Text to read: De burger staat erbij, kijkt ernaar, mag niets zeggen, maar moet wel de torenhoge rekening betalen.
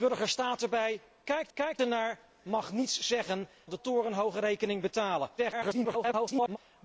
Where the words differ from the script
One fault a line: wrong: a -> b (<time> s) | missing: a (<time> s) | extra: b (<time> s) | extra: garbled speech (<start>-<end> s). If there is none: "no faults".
extra: kijkt (1.5 s)
missing: maar moet wel (3.5 s)
extra: garbled speech (5.4-6.6 s)